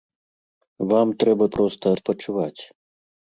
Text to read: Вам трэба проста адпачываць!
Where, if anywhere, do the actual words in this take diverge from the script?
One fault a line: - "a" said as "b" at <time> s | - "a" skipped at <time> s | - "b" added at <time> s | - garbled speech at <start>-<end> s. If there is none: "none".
none